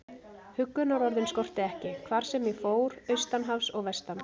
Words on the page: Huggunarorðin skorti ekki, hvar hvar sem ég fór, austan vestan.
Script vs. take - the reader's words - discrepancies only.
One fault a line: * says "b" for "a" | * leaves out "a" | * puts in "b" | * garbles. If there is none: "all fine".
* leaves out "hvar"
* puts in "hafs og"